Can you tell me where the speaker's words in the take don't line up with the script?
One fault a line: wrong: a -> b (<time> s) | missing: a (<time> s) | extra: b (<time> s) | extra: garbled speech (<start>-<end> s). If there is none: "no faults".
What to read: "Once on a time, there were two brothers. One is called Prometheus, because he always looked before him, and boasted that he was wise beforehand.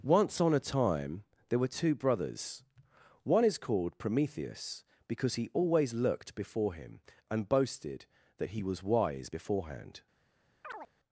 no faults